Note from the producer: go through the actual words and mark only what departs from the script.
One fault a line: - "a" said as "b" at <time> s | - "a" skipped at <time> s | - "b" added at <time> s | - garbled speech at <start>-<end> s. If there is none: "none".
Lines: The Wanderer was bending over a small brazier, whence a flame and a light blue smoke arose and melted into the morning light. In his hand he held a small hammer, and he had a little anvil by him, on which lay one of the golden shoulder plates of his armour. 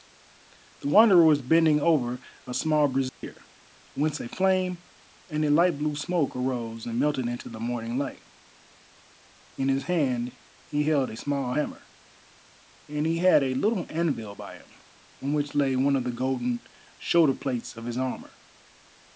none